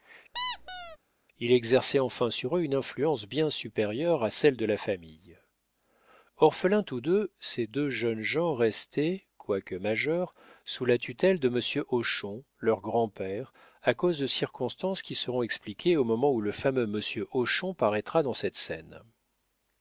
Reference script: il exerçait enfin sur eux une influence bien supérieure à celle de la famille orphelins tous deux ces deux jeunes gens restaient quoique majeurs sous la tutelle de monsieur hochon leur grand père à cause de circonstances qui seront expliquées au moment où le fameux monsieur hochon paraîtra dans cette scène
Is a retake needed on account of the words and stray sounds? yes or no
yes